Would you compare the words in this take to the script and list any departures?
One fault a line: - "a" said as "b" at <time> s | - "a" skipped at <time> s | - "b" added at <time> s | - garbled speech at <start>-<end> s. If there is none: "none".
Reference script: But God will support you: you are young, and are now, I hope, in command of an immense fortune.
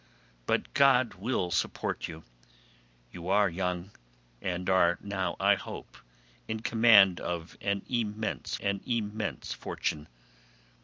- "an immense" added at 8.6 s